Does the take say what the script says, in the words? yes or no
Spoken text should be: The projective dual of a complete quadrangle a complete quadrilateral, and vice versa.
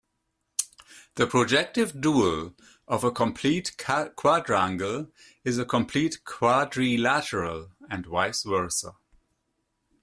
no